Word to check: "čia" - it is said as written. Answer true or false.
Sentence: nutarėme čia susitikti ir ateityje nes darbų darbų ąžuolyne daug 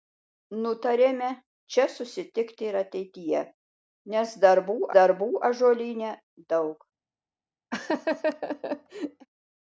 true